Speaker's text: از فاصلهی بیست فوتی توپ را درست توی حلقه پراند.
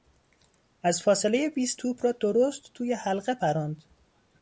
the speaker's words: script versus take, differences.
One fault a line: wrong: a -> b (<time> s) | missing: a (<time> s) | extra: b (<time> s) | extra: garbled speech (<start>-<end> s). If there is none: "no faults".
missing: فوتی (1.8 s)